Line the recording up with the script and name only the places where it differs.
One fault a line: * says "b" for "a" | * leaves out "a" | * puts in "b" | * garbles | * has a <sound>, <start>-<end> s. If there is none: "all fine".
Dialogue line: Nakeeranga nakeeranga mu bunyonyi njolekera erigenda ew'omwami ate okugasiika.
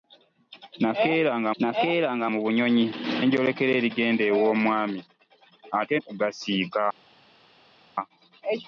all fine